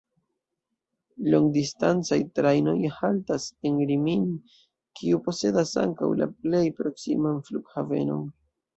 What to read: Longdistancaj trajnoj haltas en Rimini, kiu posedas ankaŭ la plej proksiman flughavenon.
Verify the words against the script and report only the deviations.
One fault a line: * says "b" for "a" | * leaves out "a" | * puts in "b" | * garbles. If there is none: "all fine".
all fine